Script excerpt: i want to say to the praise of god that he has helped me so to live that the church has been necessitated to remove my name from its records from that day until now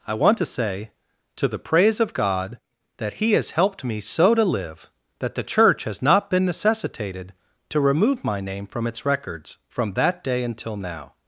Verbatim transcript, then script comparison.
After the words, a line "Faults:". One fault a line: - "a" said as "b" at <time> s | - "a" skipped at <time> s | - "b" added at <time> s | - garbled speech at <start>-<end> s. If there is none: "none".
i want to say to the praise of god that he has helped me so to live that the church has not been necessitated to remove my name from its records from that day until now
Faults:
- "not" added at 6.0 s